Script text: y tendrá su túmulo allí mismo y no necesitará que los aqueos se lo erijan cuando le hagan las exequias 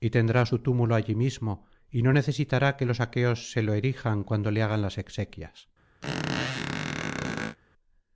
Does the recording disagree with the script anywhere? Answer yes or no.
no